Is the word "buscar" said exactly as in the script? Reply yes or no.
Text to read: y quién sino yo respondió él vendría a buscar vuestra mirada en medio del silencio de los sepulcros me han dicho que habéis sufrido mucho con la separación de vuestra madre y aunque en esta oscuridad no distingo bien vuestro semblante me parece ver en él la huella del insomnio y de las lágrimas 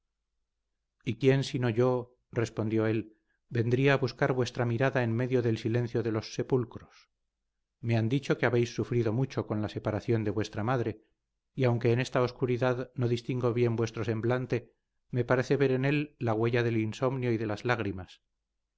yes